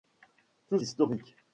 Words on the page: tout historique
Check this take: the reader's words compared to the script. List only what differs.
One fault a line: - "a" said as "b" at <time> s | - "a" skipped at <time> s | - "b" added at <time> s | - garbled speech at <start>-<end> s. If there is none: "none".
none